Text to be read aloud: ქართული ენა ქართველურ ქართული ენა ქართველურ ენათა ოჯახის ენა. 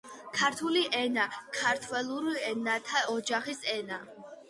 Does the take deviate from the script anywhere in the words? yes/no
yes